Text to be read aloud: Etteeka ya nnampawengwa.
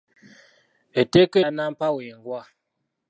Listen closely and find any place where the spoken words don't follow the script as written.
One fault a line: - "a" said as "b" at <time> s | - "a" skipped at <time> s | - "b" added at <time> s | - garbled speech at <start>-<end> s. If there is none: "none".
none